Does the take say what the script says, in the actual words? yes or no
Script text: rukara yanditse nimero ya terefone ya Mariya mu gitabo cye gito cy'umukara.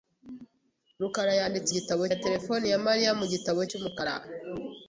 no